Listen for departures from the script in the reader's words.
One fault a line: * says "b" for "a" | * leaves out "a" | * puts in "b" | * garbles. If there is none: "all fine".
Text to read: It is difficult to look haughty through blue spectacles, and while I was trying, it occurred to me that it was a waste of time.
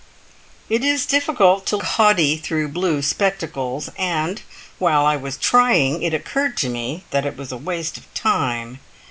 * leaves out "look"